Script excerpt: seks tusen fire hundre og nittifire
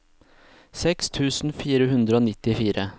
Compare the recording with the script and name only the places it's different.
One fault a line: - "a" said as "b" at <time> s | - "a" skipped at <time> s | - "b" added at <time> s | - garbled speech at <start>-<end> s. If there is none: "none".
none